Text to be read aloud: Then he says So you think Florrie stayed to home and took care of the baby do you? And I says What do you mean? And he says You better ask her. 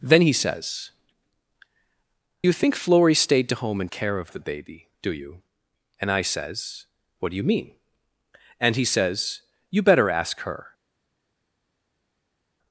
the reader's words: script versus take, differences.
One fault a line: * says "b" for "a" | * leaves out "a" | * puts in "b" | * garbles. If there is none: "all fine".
* leaves out "So"
* leaves out "took"